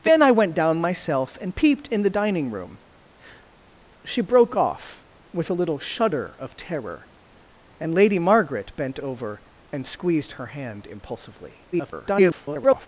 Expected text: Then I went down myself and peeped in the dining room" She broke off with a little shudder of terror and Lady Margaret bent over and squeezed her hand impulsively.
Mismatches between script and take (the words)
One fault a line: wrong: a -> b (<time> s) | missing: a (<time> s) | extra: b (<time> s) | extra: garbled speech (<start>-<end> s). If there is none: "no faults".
extra: garbled speech (11.7-12.9 s)